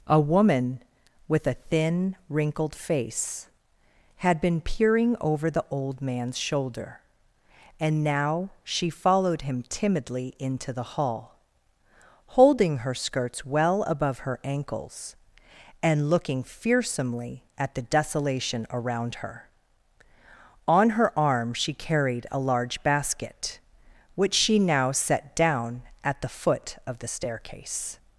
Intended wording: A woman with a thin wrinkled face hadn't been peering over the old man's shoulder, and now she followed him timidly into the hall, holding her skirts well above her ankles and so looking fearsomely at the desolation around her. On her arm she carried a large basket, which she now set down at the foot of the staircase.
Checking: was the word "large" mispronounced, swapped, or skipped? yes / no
no